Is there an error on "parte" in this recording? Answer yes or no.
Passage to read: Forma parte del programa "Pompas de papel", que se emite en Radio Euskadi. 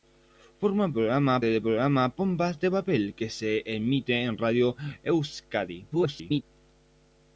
yes